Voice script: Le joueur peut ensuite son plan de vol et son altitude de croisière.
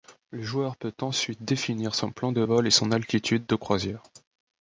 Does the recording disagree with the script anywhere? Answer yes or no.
yes